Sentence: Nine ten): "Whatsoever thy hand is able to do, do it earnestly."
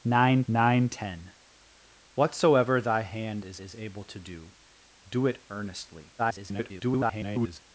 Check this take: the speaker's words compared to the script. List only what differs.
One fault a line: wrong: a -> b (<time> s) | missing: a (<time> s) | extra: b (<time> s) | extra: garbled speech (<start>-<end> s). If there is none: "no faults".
extra: nine (0.5 s)
extra: is (3.6 s)
extra: garbled speech (6.2-7.6 s)